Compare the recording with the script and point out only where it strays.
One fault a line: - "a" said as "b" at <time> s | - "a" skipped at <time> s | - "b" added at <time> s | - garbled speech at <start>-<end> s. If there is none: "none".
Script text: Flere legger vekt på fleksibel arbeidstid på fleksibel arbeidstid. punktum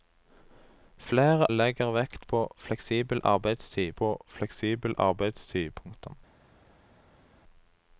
none